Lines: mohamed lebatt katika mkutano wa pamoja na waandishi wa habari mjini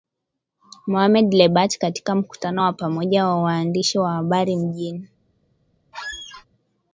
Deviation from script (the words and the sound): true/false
true